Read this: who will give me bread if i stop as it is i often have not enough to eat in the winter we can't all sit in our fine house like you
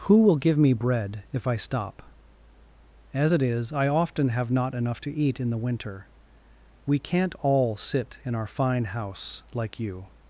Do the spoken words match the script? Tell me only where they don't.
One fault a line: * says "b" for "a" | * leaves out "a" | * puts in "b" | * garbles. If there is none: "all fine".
all fine